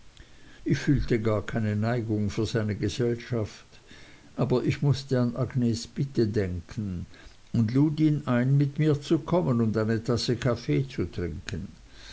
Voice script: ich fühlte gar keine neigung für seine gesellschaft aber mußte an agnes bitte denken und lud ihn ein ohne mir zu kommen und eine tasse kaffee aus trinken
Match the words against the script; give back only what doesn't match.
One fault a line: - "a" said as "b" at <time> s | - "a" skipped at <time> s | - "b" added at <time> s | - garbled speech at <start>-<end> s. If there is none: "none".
- "ich" added at 4.6 s
- "ohne" said as "mit" at 8.6 s
- "aus" said as "zu" at 10.9 s